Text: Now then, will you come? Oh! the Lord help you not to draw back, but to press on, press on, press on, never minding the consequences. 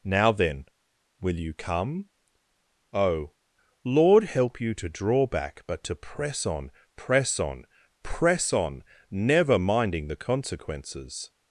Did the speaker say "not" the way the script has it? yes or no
no